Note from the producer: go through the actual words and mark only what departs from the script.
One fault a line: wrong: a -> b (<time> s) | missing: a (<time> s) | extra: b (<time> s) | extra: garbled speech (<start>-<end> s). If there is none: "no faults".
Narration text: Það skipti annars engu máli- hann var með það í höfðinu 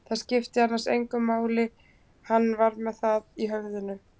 no faults